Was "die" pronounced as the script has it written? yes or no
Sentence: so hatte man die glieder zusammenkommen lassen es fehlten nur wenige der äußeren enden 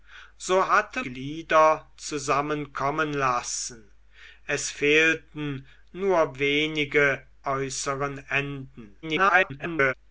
no